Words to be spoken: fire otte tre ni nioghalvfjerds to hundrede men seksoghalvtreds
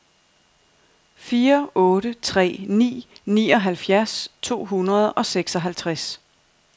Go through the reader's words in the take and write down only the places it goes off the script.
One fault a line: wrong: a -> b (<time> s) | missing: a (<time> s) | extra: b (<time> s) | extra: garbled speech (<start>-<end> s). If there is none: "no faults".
wrong: men -> og (5.1 s)